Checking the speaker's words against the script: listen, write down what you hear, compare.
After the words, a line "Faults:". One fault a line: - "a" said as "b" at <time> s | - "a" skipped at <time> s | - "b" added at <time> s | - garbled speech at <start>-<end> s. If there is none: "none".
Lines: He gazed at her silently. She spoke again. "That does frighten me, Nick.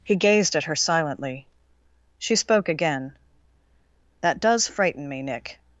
He gazed at her silently. She spoke again. "That does frighten me, Nick.
Faults:
none